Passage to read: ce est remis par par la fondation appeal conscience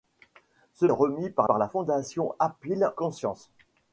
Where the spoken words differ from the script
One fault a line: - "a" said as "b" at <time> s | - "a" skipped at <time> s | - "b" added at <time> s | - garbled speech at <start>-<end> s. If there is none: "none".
none